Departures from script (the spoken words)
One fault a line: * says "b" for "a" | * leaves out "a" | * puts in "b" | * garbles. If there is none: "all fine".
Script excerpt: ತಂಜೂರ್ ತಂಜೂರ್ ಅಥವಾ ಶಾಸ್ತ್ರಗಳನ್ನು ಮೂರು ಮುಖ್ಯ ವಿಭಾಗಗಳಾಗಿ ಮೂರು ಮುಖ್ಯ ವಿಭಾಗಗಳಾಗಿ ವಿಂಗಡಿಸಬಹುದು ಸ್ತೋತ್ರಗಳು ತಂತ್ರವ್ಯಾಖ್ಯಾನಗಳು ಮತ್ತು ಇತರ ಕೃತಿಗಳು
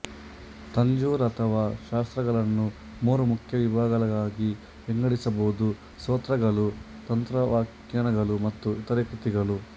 * leaves out "ತಂಜೂರ್"
* leaves out "ಮೂರು ಮುಖ್ಯ ವಿಭಾಗಗಳಾಗಿ"